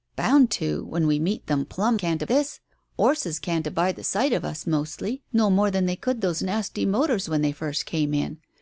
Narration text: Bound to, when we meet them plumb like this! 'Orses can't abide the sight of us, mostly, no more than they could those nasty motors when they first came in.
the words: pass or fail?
fail